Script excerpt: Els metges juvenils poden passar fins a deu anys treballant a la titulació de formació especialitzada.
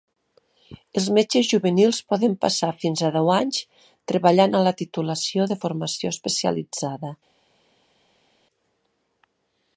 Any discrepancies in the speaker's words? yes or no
no